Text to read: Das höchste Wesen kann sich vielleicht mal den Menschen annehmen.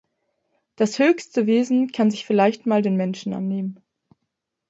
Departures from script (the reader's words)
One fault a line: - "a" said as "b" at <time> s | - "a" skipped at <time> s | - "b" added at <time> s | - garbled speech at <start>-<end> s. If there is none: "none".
none